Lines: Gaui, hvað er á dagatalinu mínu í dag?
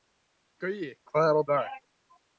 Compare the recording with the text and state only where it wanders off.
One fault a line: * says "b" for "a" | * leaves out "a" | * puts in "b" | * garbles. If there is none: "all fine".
* leaves out "dagatalinu mínu"